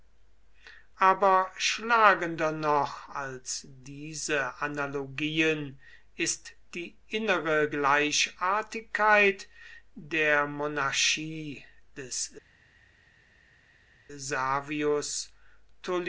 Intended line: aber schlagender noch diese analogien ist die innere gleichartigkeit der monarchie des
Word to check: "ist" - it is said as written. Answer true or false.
true